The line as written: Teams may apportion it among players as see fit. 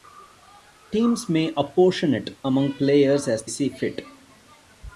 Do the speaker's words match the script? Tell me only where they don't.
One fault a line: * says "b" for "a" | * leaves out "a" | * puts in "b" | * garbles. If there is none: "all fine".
all fine